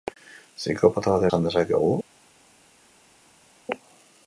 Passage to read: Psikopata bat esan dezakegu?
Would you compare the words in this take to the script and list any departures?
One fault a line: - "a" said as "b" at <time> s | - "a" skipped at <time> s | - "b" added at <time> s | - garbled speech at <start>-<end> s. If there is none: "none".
none